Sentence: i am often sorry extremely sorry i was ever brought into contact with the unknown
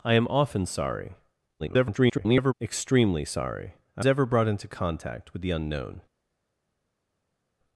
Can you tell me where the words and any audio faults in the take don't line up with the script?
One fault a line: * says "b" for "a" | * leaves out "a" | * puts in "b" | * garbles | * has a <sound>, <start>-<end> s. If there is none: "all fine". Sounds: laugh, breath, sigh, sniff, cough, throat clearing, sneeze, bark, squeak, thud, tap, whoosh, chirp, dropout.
* garbles
* leaves out "was"